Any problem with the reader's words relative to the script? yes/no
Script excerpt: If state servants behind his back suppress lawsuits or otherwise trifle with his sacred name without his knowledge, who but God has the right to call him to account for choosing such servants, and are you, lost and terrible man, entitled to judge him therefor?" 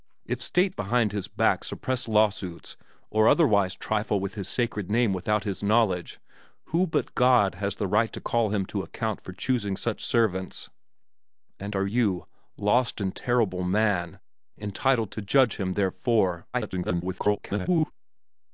yes